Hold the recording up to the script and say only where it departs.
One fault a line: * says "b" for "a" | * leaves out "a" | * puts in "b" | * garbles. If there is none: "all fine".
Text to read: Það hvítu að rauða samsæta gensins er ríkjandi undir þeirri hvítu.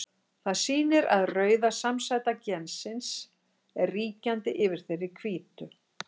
* says "sýnir" for "hvítu"
* says "yfir" for "undir"